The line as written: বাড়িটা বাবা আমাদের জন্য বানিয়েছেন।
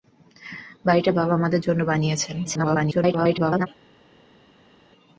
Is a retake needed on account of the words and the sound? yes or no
yes